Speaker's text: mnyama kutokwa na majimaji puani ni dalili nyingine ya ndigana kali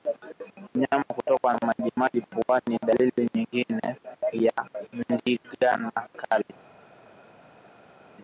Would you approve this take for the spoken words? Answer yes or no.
yes